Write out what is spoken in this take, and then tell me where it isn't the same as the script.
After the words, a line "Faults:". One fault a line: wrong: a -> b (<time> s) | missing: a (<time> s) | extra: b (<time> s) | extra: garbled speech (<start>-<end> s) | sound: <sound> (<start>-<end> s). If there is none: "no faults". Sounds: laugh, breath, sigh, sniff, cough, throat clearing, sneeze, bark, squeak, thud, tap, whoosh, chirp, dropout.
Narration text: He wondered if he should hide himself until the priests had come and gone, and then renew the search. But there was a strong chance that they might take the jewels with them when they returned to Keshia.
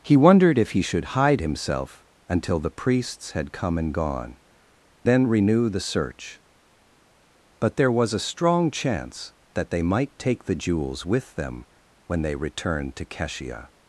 He wondered if he should hide himself until the priests had come and gone, then renew the search. But there was a strong chance that they might take the jewels with them when they returned to Keshia.
Faults:
missing: and (4.4 s)